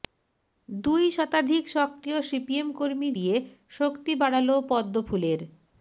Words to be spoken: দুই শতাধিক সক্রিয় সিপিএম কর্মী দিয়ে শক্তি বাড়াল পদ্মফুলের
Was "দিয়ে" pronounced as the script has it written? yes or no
yes